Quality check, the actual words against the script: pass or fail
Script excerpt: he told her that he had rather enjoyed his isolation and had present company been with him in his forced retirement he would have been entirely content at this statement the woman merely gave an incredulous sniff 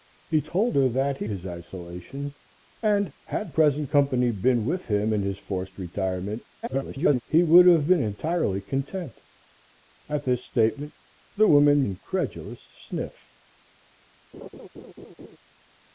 fail